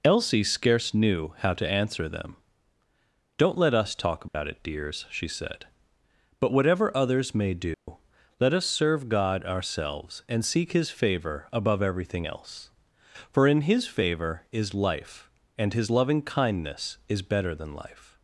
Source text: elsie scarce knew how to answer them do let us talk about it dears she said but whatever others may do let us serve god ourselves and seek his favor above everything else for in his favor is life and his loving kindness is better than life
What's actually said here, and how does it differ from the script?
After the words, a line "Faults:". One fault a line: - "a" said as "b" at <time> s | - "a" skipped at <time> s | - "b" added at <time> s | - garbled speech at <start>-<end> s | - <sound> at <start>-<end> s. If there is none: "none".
elsie scarce knew how to answer them don't let us talk about it dears she said but whatever others may do let us serve god ourselves and seek his favor above everything else for in his favor is life and his loving kindness is better than life
Faults:
- "do" said as "don't" at 3.4 s
- dropout at 4.3-4.3 s
- dropout at 7.7-7.9 s